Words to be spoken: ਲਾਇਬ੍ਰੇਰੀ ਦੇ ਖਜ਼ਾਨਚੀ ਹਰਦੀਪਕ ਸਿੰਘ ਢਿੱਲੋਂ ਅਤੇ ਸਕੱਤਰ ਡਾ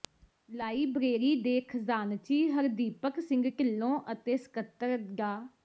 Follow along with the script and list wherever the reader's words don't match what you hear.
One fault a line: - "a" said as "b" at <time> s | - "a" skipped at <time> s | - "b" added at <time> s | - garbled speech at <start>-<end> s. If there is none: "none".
none